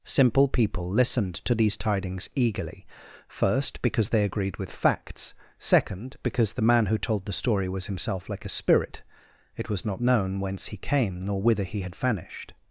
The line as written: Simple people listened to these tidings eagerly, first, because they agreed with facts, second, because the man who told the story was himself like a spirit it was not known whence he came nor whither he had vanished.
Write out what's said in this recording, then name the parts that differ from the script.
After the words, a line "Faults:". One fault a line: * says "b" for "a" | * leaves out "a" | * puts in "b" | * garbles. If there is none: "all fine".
Simple people listened to these tidings eagerly, first, because they agreed with facts, second, because the man who told the story was himself like a spirit it was not known whence he came nor whither he had vanished.
Faults:
all fine